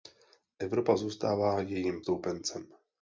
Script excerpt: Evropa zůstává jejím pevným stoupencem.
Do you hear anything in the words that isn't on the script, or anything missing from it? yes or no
yes